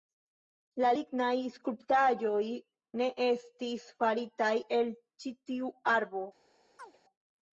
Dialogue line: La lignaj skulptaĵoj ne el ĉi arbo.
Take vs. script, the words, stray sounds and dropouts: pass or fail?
fail